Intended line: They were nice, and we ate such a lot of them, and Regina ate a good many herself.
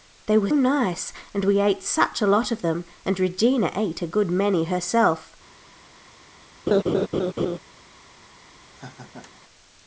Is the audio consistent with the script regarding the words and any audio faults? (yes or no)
no